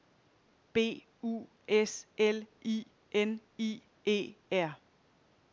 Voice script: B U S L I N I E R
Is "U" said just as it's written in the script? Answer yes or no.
yes